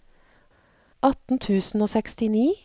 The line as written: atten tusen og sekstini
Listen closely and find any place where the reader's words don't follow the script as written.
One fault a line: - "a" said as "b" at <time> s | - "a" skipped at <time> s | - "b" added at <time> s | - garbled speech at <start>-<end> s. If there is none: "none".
none